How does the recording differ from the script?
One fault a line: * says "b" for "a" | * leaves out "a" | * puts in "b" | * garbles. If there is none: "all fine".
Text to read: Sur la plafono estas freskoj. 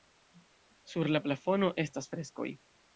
all fine